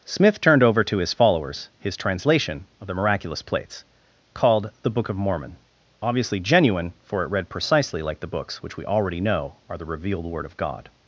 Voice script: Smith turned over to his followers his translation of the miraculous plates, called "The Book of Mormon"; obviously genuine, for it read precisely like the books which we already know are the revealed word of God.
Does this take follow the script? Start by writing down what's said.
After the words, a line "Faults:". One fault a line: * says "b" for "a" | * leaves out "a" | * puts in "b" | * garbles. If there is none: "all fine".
Smith turned over to his followers his translation of the miraculous plates, called "The Book of Mormon"; obviously genuine, for it read precisely like the books which we already know are the revealed word of God.
Faults:
all fine